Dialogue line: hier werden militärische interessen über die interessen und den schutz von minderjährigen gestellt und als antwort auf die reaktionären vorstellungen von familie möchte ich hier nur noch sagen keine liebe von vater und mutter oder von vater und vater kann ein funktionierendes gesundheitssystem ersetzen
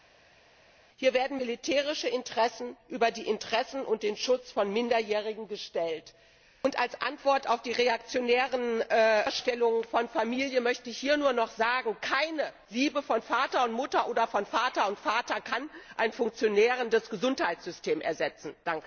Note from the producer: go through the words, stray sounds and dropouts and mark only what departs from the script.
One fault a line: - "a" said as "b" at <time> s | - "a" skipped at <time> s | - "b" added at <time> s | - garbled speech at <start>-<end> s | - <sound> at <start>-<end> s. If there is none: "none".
none